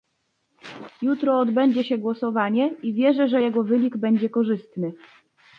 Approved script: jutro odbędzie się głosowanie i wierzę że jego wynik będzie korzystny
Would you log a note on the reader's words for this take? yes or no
no